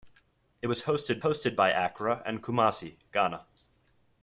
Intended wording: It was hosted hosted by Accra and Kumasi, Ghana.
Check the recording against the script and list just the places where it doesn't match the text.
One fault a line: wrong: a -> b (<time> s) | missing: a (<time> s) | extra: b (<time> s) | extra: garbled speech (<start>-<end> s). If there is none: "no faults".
no faults